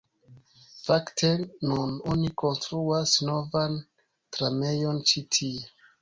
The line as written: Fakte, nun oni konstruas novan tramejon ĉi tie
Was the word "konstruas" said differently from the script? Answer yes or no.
no